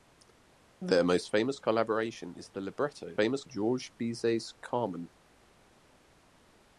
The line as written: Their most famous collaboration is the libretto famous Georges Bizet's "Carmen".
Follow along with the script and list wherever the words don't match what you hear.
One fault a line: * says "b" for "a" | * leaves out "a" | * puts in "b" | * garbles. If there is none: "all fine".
all fine